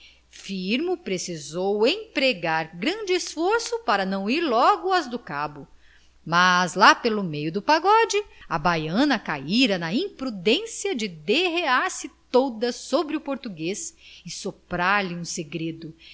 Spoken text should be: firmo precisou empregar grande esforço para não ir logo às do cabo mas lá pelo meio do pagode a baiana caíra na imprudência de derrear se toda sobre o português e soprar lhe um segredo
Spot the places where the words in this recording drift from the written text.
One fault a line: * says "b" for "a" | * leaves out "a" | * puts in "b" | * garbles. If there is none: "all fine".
all fine